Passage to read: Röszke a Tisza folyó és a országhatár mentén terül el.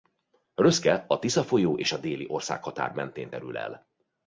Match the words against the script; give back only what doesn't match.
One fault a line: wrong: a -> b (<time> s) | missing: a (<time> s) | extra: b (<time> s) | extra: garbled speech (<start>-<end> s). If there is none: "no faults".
extra: déli (2.0 s)